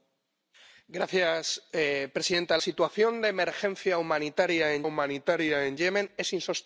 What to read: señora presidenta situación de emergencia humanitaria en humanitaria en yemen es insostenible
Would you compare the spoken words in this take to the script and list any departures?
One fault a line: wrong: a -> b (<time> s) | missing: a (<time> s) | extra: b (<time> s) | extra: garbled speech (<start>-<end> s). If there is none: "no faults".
no faults